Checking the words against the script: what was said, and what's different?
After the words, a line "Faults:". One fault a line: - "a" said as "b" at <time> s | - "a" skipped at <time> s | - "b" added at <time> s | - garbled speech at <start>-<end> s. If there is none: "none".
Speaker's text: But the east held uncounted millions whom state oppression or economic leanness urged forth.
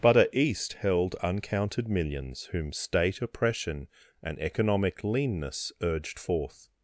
But a east held uncounted millions whom state oppression and economic leanness urged forth.
Faults:
- "the" said as "a" at 0.2 s
- "or" said as "and" at 4.2 s